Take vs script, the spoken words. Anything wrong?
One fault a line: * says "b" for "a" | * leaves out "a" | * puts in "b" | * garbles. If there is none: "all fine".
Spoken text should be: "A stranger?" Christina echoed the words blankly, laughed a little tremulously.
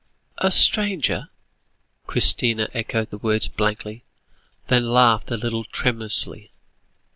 * puts in "then"